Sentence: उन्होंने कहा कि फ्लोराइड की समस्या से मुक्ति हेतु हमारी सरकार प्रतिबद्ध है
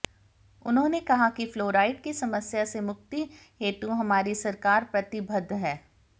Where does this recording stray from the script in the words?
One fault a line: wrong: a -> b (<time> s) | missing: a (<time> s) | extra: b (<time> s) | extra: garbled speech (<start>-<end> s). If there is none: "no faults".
no faults